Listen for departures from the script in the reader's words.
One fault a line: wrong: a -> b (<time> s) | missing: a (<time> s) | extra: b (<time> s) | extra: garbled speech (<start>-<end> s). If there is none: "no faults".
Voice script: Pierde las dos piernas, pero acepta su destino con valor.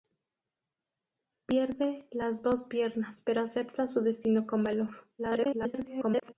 extra: garbled speech (5.2-6.3 s)